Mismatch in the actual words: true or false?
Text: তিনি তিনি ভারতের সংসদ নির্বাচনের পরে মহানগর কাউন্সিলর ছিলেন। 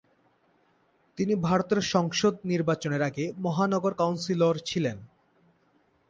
true